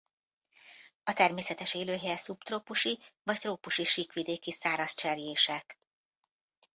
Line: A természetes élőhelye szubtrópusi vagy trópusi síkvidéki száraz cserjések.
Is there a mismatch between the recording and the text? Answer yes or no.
no